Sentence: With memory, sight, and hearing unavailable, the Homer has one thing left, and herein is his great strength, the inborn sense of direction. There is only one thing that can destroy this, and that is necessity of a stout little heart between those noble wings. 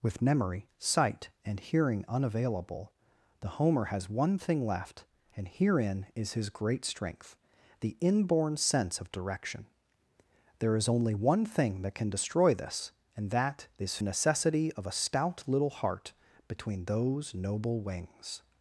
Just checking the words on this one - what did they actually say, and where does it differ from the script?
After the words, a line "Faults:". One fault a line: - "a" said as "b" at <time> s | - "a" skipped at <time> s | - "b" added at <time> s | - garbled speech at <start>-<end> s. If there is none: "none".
With memory, sight, and hearing unavailable, the Homer has one thing left, and herein is his great strength, the inborn sense of direction. There is only one thing that can destroy this, and that is necessity of a stout little heart between those noble wings.
Faults:
none